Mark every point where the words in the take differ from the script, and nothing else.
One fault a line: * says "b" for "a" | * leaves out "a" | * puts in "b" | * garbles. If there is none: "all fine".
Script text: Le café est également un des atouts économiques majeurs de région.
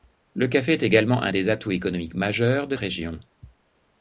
all fine